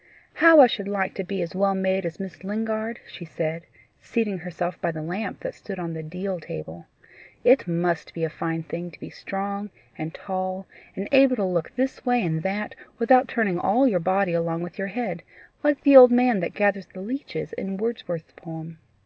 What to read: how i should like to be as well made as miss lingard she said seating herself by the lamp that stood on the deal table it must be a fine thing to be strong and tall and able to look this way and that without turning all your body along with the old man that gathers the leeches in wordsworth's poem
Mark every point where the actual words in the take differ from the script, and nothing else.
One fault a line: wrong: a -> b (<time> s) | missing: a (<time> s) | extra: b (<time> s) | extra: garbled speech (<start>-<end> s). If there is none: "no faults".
extra: your head like (14.8 s)